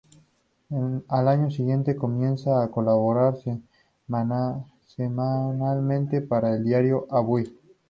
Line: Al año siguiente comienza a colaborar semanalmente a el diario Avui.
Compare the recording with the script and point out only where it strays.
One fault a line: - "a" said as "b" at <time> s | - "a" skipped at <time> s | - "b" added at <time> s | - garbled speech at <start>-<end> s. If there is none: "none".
- "a" said as "para" at 6.2 s